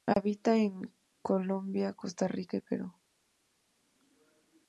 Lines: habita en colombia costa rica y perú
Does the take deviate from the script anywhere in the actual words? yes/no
no